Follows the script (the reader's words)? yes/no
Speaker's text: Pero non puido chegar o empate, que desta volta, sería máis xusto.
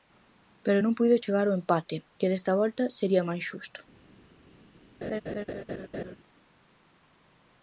yes